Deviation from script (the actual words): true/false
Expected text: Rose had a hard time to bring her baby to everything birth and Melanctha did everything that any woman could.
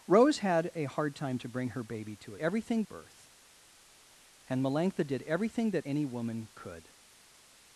false